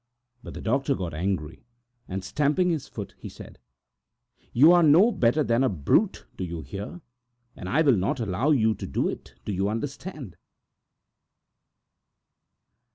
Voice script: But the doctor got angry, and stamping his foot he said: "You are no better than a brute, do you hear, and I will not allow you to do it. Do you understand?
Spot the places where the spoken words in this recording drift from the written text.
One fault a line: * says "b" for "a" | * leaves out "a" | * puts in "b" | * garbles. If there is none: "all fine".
all fine